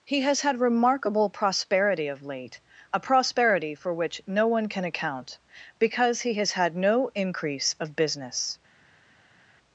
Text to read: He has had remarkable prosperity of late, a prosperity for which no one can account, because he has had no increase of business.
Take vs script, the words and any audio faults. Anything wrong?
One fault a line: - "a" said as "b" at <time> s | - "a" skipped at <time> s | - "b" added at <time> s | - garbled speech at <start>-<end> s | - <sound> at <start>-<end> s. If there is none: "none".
none